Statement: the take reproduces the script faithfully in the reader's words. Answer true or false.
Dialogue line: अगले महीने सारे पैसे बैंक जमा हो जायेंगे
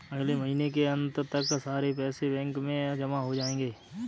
false